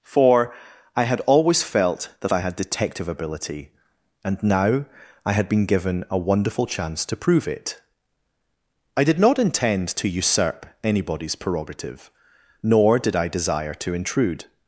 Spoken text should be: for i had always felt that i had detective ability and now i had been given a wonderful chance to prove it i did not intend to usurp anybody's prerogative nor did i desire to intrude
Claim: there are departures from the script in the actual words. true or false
false